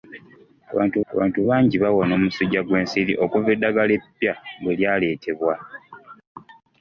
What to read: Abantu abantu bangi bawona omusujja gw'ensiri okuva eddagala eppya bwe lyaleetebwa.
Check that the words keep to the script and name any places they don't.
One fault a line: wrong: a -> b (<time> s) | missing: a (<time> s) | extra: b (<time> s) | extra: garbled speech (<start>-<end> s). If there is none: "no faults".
no faults